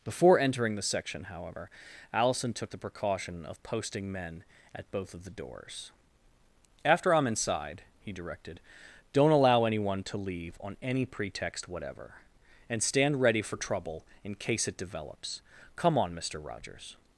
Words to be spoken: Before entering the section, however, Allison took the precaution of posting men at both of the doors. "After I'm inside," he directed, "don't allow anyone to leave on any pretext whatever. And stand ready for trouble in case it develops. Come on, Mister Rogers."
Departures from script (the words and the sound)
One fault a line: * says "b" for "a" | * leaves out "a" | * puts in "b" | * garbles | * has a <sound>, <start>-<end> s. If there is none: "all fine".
all fine